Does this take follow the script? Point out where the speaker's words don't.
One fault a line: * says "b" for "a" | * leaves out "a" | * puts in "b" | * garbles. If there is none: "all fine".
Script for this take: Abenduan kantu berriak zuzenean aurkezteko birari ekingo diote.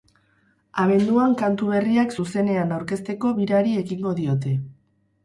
all fine